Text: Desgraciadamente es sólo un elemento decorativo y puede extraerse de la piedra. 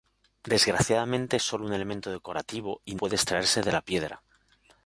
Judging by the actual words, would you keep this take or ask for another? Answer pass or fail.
pass